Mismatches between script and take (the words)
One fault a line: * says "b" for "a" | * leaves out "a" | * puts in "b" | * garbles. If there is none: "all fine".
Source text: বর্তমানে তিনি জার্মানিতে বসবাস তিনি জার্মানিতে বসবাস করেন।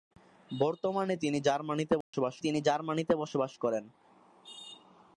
all fine